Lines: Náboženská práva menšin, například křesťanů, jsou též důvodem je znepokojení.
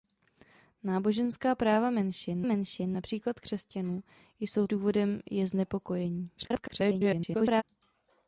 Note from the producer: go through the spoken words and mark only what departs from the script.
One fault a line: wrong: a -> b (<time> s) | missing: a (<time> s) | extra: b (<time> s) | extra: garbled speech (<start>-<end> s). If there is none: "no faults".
extra: menšin (2.4 s)
missing: též (4.7 s)
extra: garbled speech (6.4-7.6 s)